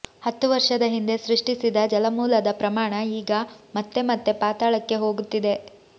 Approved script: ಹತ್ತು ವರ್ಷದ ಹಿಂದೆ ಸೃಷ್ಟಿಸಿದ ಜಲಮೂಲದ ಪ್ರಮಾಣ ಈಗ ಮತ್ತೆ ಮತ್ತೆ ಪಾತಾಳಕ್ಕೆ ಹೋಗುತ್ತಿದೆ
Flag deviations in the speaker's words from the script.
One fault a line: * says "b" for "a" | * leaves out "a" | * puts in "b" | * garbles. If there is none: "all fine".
all fine